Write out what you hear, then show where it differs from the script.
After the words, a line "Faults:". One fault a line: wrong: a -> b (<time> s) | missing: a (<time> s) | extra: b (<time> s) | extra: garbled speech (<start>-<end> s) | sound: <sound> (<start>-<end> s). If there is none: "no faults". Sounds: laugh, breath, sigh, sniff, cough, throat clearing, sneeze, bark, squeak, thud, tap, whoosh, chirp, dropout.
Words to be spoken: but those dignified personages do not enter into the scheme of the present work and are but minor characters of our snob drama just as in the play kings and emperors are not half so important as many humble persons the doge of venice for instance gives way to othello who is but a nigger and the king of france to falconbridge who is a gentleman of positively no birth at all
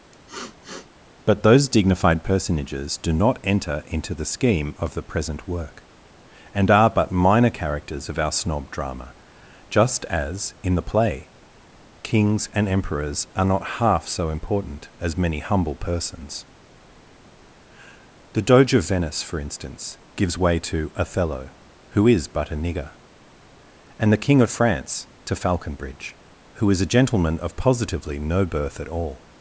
but those dignified personages do not enter into the scheme of the present work and are but minor characters of our snob drama just as in the play kings and emperors are not half so important as many humble persons the doge of venice for instance gives way to othello who is but a nigger and the king of france to falconbridge who is a gentleman of positively no birth at all
Faults:
sound: sniff (0.1-0.9 s)